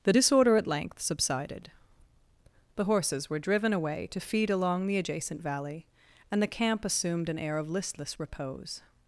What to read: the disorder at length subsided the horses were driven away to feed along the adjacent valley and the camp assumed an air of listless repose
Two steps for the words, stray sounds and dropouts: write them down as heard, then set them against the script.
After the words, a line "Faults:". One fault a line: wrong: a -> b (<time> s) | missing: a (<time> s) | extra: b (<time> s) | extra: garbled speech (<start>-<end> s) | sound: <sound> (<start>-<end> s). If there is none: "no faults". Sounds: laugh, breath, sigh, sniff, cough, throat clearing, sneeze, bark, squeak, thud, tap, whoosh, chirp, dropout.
the disorder at length subsided the horses were driven away to feed along the adjacent valley and the camp assumed an air of listless repose
Faults:
no faults